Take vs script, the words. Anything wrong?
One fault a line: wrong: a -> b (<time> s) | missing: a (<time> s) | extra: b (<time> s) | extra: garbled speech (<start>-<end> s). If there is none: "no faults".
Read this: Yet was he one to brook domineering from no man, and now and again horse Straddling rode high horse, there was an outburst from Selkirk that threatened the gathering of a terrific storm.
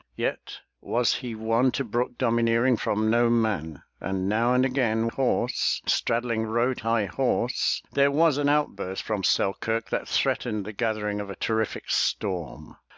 no faults